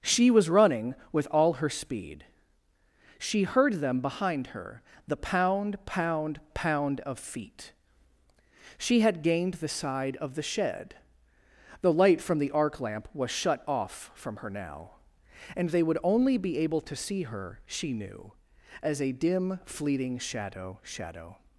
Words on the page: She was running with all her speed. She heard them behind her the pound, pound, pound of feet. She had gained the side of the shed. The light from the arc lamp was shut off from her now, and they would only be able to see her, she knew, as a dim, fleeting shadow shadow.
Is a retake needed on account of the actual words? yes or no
no